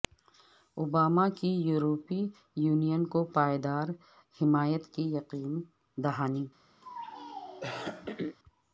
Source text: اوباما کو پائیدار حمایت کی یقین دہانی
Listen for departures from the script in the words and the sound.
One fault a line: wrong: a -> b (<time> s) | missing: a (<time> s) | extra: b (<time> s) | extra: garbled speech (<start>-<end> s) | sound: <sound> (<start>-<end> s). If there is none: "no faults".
extra: کی یورپی یونین (1.4 s)
sound: throat clearing (6.8-8.4 s)